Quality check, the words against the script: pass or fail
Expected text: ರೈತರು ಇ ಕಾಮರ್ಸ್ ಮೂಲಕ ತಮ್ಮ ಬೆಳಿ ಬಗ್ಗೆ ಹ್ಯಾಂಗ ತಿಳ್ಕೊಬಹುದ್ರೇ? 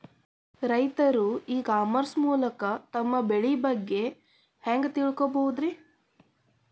pass